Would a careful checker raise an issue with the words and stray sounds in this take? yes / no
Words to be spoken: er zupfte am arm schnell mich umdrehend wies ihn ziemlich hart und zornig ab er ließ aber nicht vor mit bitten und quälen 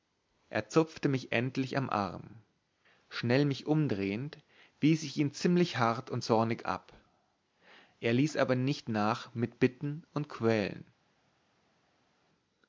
yes